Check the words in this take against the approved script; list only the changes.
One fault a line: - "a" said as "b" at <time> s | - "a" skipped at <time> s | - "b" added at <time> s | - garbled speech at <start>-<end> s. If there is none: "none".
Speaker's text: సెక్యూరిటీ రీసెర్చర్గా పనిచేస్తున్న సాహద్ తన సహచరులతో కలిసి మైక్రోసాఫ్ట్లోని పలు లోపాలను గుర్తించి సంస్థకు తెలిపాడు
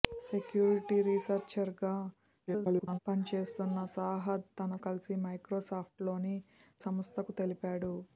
- garbled speech at 2.5-3.0 s
- "సహచరులతో" skipped at 4.8 s
- "పలు లోపాలను గుర్తించి" skipped at 6.4 s